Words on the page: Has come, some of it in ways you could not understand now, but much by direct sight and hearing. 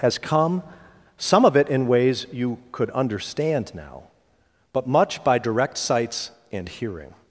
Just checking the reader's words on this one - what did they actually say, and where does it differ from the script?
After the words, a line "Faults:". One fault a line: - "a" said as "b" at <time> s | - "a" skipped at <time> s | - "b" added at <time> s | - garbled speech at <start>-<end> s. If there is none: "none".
Has come, some of it in ways you could understand now, but much by direct sights and hearing.
Faults:
- "not" skipped at 2.9 s
- "sight" said as "sights" at 5.8 s